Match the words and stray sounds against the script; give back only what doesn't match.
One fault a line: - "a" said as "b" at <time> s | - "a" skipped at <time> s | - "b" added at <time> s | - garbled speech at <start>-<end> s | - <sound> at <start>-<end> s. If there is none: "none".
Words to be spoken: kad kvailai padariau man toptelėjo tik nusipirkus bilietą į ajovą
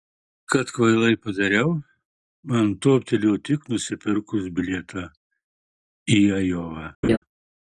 - laugh at 7.0-7.2 s